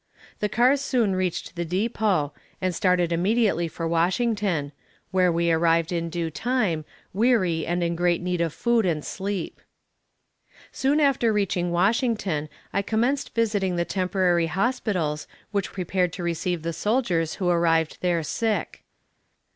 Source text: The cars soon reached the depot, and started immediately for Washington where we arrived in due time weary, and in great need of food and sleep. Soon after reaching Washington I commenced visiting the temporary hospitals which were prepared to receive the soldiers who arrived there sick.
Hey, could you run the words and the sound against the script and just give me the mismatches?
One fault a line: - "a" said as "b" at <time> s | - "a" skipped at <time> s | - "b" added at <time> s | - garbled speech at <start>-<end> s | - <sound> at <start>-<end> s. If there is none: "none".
- "were" skipped at 15.7 s